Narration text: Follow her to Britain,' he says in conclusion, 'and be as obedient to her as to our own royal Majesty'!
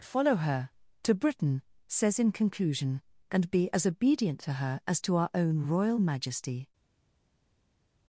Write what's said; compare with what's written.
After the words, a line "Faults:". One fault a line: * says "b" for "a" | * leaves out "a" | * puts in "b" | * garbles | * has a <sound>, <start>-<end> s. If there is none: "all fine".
Follow her to Britain,' says in conclusion, 'and be as obedient to her as to our own royal Majesty'!
Faults:
* leaves out "he"